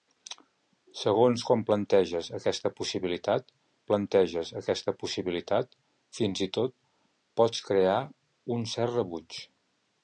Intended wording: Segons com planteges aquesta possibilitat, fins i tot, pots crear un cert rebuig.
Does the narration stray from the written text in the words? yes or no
yes